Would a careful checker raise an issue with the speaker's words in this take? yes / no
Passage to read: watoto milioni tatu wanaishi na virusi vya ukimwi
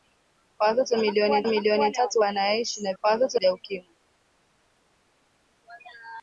yes